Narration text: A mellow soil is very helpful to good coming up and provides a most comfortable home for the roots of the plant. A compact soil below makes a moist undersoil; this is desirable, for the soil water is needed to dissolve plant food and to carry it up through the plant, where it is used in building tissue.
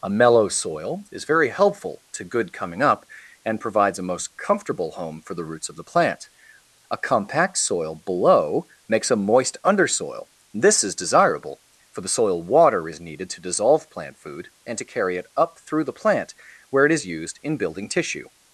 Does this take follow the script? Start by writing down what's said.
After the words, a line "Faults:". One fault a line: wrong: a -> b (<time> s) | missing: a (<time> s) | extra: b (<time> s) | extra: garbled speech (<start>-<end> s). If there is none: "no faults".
A mellow soil is very helpful to good coming up and provides a most comfortable home for the roots of the plant. A compact soil below makes a moist undersoil; this is desirable, for the soil water is needed to dissolve plant food and to carry it up through the plant, where it is used in building tissue.
Faults:
no faults